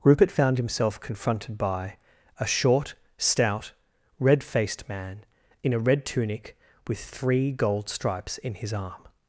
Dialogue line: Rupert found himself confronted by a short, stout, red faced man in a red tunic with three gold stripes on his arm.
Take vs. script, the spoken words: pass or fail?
fail